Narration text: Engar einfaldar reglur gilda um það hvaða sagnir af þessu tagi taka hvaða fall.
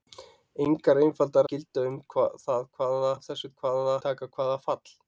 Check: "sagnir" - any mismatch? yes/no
yes